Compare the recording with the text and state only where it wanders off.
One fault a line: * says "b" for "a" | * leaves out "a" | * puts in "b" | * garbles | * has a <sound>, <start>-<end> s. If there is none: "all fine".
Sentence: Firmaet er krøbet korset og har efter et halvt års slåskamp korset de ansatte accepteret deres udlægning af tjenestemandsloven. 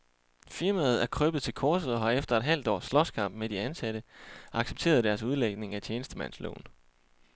* puts in "til"
* says "med" for "korset"